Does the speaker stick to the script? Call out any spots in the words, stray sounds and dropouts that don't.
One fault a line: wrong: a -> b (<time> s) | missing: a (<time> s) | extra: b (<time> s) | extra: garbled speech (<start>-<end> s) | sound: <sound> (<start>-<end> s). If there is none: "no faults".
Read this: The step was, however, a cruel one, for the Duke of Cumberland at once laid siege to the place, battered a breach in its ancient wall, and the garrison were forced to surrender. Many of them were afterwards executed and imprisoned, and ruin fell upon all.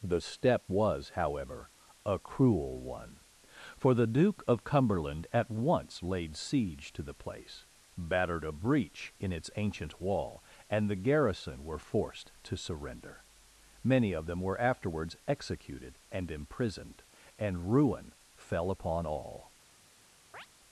sound: chirp (20.3-20.5 s)